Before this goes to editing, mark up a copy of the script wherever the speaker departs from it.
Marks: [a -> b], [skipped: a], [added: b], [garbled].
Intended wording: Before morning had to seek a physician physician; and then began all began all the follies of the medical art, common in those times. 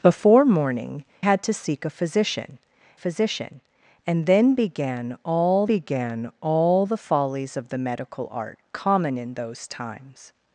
Before morning had to seek a physician physician; and then began all began all the follies of the medical art, common in those times.